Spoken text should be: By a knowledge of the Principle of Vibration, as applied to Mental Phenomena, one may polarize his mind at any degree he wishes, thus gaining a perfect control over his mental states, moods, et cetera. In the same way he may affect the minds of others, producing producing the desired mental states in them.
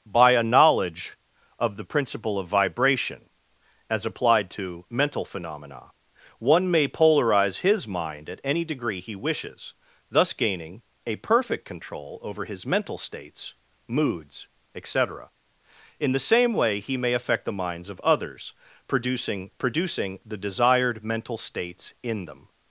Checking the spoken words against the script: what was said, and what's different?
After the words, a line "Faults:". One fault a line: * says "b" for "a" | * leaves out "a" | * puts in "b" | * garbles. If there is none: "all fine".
By a knowledge of the Principle of Vibration, as applied to Mental Phenomena, one may polarize his mind at any degree he wishes, thus gaining a perfect control over his mental states, moods, et cetera. In the same way he may affect the minds of others, producing producing the desired mental states in them.
Faults:
all fine